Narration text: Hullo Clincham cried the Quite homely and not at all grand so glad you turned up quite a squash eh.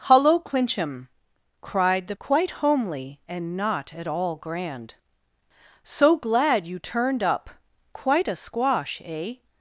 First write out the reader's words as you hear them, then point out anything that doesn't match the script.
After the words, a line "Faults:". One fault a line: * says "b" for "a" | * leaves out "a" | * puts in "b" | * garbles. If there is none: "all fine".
Hullo Clincham cried the Quite homely and not at all grand so glad you turned up quite a squash eh.
Faults:
all fine